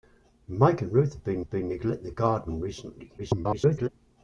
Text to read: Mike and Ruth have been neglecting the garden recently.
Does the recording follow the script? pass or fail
fail